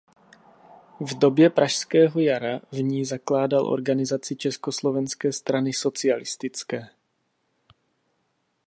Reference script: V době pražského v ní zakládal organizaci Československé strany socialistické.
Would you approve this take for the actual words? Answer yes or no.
no